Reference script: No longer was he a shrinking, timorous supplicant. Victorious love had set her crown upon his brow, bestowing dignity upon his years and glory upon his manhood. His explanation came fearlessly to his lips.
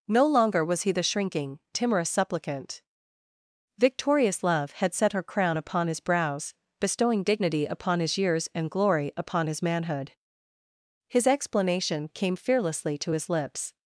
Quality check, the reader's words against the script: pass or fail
fail